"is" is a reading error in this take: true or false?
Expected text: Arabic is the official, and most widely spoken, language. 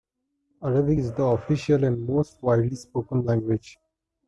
false